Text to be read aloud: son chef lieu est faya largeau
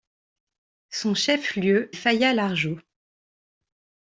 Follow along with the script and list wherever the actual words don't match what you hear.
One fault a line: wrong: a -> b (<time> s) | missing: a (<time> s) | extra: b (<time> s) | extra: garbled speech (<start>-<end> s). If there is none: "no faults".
missing: est (1.9 s)